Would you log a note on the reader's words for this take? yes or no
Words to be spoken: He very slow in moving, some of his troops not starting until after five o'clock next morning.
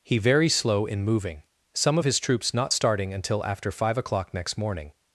no